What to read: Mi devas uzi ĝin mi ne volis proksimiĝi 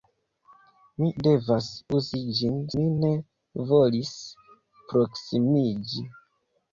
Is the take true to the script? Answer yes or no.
yes